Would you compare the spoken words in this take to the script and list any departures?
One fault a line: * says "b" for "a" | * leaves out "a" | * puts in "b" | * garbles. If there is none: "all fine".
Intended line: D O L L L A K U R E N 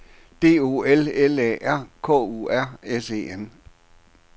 * says "A R" for "L A"
* puts in "S"